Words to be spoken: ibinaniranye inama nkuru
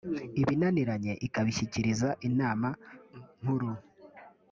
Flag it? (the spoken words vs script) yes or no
yes